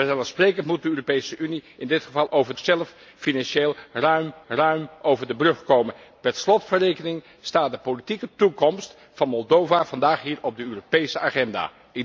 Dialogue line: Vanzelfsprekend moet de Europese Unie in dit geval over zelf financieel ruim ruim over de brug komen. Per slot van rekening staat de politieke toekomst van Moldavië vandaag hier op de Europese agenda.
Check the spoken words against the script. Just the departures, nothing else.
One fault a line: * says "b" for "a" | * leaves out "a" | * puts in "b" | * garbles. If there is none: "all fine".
all fine